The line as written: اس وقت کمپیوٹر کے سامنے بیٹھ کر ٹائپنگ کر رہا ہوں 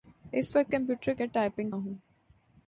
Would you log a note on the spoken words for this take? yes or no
yes